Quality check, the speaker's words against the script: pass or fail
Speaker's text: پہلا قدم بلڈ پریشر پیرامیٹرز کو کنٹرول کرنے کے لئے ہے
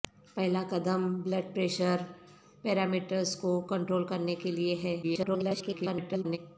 fail